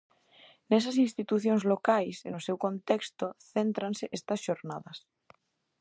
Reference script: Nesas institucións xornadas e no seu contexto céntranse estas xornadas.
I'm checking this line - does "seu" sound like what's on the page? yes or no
yes